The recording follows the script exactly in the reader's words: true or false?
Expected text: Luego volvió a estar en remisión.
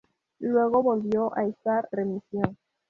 false